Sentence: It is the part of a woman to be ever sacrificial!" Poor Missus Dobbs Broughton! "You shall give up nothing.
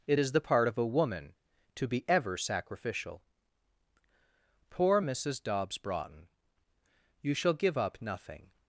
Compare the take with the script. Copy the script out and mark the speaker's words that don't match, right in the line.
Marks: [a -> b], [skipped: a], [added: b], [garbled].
It is the part of a woman to be ever sacrificial!" Poor Missus Dobbs Broughton! "You shall give up nothing.